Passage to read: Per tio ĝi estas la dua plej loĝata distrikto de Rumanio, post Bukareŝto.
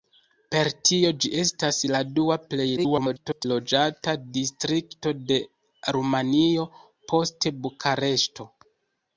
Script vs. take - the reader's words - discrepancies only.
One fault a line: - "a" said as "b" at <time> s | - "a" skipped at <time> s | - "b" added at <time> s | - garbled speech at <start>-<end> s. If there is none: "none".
- garbled speech at 2.8-3.5 s